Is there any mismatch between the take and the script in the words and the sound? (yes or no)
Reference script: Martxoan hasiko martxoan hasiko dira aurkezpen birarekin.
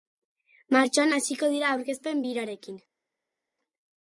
yes